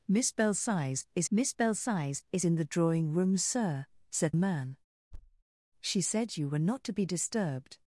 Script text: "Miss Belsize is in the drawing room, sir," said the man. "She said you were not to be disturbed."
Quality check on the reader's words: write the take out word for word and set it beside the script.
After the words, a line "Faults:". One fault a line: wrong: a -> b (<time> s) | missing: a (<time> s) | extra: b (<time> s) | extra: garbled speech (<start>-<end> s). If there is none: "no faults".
"Miss Belsize is miss Belsize is in the drawing room, sir," said man. "She said you were not to be disturbed."
Faults:
extra: miss Belsize is (1.3 s)
missing: the (4.3 s)